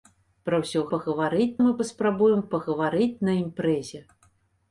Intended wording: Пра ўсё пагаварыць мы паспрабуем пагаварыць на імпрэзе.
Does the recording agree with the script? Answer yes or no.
yes